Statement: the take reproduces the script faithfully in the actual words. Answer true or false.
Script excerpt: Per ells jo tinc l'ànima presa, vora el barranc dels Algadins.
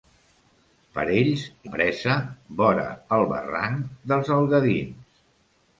false